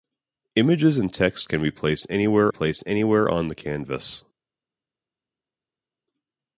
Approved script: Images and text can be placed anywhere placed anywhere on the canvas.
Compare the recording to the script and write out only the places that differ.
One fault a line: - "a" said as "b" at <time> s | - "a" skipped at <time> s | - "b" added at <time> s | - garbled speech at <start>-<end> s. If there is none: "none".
none